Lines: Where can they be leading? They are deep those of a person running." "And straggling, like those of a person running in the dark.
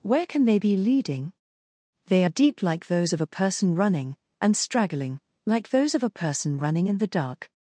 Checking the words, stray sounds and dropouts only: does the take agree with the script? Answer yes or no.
no